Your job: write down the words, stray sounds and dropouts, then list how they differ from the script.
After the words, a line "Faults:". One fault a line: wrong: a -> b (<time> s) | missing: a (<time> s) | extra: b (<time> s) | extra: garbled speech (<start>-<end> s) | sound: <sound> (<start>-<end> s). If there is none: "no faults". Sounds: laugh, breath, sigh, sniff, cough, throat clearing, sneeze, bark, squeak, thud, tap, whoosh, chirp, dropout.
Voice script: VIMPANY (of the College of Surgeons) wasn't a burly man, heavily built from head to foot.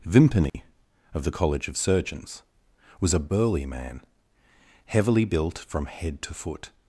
VIMPANY (of the College of Surgeons) was a burly man, heavily built from head to foot.
Faults:
sound: dropout (0.5-0.5 s)
wrong: wasn't -> was (3.0 s)